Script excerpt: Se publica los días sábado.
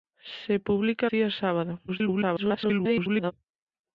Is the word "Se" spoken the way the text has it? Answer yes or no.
yes